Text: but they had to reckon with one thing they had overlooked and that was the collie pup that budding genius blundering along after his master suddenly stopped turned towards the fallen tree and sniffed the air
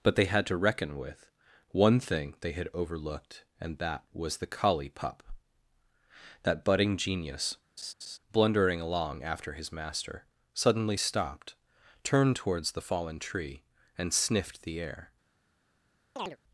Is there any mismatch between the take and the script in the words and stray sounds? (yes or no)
yes